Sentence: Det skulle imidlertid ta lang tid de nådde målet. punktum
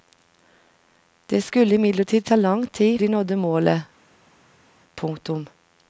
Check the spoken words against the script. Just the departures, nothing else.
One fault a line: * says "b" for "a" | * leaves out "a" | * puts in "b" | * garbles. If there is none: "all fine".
all fine